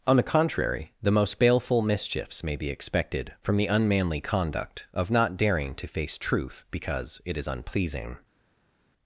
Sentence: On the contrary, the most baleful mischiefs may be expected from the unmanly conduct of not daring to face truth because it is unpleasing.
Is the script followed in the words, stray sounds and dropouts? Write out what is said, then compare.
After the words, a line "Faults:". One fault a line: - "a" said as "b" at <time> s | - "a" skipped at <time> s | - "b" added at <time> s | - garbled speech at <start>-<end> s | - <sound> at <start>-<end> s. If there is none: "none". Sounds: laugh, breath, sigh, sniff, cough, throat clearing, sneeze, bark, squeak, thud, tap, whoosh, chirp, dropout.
On the contrary, the most baleful mischiefs may be expected from the unmanly conduct of not daring to face truth because it is unpleasing.
Faults:
none